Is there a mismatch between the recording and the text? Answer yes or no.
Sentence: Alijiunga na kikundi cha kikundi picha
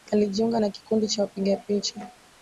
yes